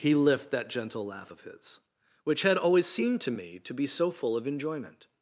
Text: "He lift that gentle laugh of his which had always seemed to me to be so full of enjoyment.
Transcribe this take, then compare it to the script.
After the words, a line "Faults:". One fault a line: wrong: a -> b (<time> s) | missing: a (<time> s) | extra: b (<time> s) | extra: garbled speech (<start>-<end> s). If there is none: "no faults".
"He lift that gentle laugh of his which had always seemed to me to be so full of enjoyment.
Faults:
no faults